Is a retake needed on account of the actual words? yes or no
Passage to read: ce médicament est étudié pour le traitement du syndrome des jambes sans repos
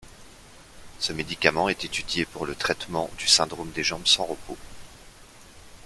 no